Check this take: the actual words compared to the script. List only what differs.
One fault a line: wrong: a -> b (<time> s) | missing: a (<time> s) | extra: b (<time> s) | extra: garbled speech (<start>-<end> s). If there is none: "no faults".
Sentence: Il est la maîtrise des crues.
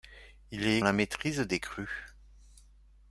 no faults